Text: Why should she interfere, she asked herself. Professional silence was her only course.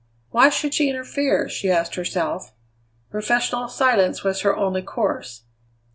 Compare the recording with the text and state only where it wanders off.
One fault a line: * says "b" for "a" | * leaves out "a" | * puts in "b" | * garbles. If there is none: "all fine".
all fine